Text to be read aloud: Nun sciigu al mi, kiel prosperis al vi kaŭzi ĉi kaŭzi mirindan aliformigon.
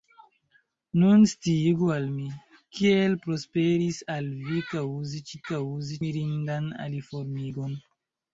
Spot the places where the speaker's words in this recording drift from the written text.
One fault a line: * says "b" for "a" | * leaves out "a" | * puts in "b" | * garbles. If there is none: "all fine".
all fine